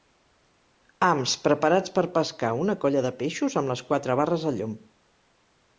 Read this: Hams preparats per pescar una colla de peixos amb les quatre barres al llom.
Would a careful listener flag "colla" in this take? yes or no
no